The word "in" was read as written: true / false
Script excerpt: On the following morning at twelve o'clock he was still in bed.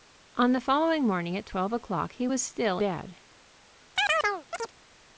false